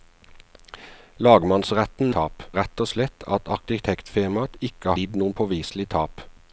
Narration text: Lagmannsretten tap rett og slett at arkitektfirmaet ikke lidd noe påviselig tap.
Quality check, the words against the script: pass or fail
pass